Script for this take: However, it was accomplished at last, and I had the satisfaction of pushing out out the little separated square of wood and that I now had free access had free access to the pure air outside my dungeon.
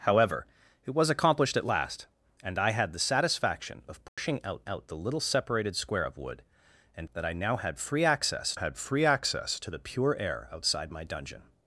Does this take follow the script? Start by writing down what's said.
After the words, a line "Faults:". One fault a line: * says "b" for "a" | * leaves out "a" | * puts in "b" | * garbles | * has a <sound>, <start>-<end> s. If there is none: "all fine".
However, it was accomplished at last, and I had the satisfaction of pushing out out the little separated square of wood and that I now had free access had free access to the pure air outside my dungeon.
Faults:
* has a dropout, 4.1-4.2 s